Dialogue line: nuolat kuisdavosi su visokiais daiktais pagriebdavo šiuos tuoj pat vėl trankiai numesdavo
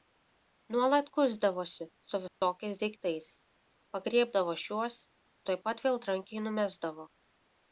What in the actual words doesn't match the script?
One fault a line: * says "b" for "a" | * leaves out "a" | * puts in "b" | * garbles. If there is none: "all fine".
all fine